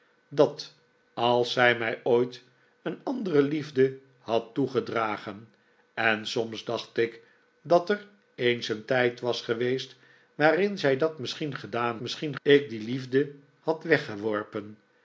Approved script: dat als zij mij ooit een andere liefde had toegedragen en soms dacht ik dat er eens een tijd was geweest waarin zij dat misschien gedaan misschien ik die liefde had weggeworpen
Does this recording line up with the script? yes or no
yes